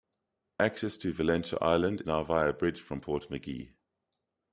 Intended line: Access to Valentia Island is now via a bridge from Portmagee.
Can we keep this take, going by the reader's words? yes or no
no